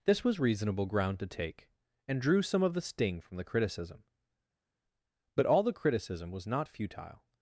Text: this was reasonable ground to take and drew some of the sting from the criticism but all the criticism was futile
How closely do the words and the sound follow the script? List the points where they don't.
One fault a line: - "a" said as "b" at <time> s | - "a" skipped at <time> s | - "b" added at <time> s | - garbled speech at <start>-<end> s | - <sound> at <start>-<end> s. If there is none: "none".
- "not" added at 6.4 s